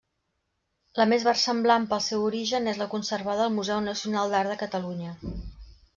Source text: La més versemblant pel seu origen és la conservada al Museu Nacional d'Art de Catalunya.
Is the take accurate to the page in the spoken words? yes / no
yes